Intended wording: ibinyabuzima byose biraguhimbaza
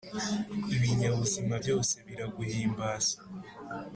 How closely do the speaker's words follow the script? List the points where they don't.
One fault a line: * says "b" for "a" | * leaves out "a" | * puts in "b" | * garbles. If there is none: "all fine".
all fine